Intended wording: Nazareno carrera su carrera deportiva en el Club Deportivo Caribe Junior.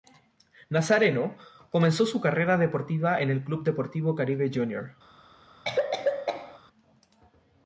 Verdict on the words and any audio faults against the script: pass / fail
fail